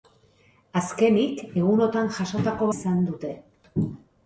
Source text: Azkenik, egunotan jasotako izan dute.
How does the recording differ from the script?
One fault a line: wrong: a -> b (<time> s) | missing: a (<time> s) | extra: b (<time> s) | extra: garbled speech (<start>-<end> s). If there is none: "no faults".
no faults